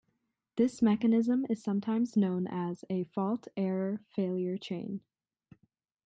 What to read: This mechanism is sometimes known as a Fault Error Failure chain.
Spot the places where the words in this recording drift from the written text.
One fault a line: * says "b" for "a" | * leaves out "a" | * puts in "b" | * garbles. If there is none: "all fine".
all fine